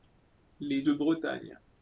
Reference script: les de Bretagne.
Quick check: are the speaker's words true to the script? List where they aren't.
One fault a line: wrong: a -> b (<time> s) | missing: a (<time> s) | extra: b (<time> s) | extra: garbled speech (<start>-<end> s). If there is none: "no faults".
no faults